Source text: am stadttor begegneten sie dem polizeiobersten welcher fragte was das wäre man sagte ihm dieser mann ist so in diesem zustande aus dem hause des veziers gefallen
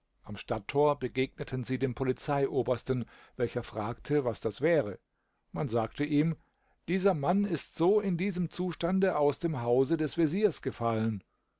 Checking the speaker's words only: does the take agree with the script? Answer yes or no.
yes